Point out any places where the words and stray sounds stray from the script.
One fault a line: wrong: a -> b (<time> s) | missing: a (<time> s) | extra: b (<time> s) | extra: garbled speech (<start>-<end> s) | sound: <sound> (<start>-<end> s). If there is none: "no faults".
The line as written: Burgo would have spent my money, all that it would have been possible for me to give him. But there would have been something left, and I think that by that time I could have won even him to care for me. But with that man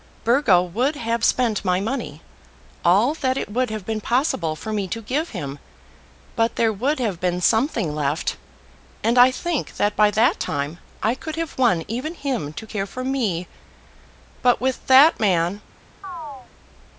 sound: chirp (16.0-16.5 s)